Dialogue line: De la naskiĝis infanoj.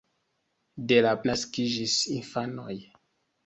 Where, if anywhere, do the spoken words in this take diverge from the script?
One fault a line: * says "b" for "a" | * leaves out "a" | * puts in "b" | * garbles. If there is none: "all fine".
all fine